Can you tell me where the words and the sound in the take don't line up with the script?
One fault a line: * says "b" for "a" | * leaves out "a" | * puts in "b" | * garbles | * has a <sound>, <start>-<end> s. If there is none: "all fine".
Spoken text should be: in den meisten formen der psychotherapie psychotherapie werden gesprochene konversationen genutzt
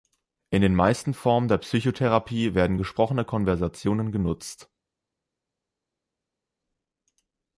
* leaves out "psychotherapie"